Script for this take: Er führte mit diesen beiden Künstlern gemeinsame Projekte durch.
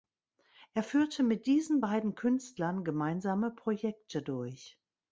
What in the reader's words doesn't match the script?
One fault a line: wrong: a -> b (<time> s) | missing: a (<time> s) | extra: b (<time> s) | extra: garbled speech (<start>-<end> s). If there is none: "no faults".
no faults